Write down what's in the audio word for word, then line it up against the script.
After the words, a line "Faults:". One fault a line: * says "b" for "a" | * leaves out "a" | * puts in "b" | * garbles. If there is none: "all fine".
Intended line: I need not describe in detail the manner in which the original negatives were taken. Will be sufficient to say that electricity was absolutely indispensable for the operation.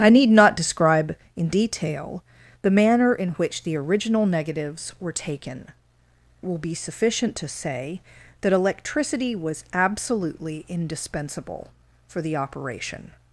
I need not describe in detail the manner in which the original negatives were taken. Will be sufficient to say that electricity was absolutely indispensable for the operation.
Faults:
all fine